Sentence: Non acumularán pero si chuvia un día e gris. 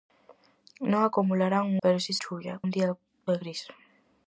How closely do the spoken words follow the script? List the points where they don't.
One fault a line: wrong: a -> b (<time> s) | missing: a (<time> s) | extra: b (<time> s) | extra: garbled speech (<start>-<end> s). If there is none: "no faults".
no faults